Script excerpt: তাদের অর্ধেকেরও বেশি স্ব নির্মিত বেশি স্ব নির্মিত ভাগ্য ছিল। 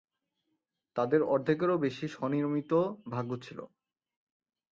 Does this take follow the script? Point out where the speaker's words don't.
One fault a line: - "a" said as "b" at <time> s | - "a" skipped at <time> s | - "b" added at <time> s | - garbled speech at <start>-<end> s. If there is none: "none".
- "বেশি স্ব নির্মিত" skipped at 2.7 s